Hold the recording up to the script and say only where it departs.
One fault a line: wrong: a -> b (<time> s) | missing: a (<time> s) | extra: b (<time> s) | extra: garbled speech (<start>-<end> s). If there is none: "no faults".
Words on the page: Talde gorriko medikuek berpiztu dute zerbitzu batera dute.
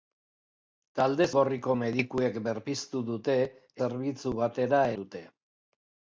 no faults